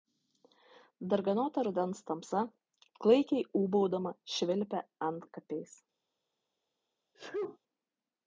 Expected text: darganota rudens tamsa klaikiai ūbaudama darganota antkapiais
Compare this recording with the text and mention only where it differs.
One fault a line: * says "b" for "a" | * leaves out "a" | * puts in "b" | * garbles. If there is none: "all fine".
* says "švilpia" for "darganota"